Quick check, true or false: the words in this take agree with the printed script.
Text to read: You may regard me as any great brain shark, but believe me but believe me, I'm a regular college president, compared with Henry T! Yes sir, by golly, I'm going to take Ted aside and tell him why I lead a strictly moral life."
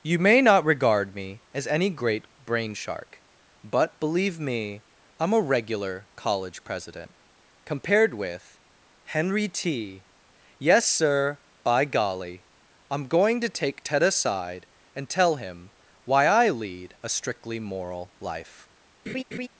false